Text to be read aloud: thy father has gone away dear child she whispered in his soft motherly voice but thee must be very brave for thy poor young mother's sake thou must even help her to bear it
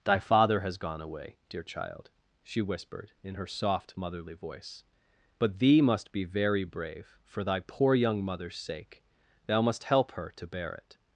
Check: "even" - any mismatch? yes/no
yes